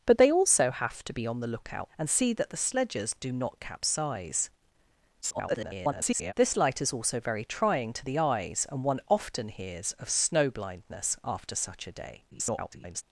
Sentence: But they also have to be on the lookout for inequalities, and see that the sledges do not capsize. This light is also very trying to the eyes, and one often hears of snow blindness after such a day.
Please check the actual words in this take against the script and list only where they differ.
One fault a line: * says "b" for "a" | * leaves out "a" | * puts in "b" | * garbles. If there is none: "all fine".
* leaves out "for inequalities"
* garbles
* garbles